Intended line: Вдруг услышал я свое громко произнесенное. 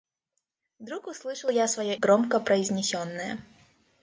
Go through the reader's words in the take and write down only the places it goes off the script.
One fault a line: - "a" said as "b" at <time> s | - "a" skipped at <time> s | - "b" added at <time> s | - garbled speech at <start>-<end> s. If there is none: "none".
none